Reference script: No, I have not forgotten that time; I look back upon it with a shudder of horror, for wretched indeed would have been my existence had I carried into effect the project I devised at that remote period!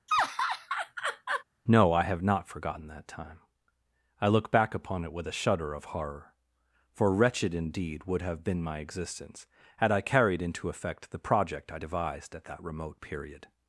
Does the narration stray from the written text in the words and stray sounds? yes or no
yes